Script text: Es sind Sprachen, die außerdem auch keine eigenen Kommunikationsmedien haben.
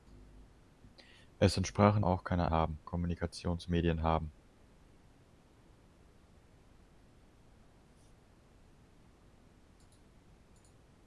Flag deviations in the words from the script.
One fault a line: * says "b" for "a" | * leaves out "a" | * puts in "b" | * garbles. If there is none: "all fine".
* leaves out "die außerdem"
* says "haben" for "eigenen"